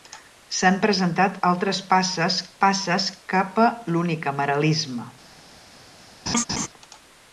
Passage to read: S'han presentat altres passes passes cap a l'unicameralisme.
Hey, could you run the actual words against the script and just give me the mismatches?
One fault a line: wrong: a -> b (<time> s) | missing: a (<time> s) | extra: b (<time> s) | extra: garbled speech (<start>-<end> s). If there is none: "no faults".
no faults